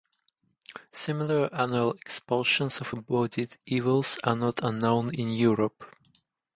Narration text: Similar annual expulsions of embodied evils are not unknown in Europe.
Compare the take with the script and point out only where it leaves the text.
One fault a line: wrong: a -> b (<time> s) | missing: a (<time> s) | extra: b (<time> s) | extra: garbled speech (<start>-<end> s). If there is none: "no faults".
no faults